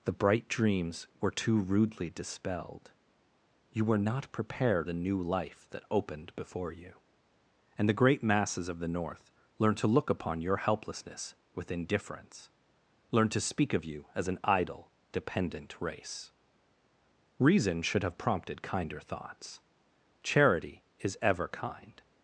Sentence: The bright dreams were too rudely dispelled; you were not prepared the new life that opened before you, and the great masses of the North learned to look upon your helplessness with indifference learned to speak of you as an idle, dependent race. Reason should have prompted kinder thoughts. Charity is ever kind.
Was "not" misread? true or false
false